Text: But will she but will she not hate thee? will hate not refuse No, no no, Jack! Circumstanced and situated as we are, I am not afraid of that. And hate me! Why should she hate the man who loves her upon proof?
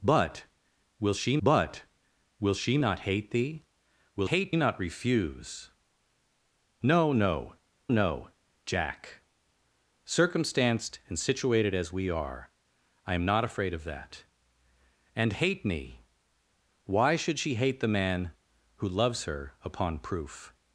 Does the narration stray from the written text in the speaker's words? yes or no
no